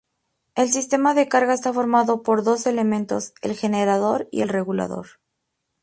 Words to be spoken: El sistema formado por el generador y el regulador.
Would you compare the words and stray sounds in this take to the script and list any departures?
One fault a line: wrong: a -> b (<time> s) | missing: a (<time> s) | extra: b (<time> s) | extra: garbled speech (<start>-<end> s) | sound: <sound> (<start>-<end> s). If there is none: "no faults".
extra: de carga está (1.1 s)
extra: dos elementos (2.4 s)